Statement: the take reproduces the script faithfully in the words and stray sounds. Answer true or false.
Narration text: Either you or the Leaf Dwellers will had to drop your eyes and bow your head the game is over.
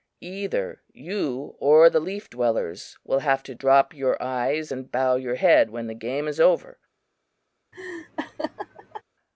false